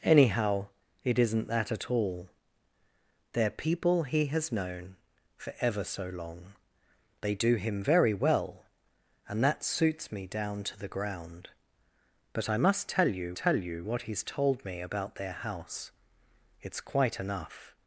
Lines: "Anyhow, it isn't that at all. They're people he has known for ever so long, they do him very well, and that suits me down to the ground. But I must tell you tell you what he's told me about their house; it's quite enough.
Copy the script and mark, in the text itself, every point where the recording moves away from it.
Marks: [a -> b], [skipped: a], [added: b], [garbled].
"Anyhow, it isn't that at all. They're people he has known for ever so long, they do him very well, and that suits me down to the ground. But I must tell you tell you what he's told me about their house; it's quite enough.